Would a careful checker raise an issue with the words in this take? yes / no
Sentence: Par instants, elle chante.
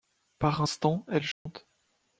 no